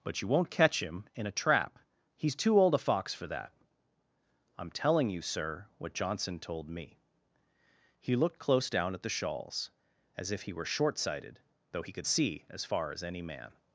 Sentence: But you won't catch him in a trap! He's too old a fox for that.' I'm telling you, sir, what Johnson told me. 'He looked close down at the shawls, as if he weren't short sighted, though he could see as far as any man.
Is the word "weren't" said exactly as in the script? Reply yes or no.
no